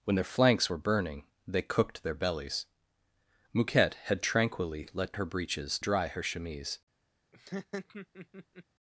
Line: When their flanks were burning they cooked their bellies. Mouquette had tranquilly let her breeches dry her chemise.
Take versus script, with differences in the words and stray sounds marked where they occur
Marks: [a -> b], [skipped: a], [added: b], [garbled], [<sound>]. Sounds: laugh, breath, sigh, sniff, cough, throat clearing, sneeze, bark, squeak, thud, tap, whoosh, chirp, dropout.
When their flanks were burning they cooked their bellies. Mouquette had tranquilly let her breeches dry her chemise. [laugh]